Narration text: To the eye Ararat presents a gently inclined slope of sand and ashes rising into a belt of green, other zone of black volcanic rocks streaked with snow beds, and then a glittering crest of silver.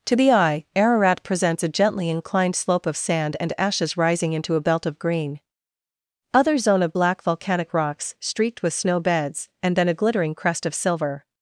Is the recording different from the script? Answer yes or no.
no